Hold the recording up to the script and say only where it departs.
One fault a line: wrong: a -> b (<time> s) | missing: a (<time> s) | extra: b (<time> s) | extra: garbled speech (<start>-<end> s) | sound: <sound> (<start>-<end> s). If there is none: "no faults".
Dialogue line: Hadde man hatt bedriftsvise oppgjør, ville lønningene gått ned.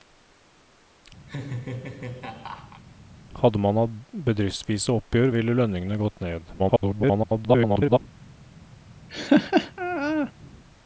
sound: laugh (1.3-2.8 s)
extra: garbled speech (6.6-8.0 s)
sound: laugh (9.1-10.3 s)